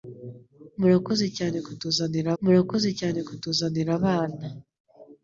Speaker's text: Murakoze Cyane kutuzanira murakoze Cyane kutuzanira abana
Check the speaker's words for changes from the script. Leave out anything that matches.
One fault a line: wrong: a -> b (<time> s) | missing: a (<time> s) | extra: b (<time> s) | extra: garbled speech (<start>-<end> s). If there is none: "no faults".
no faults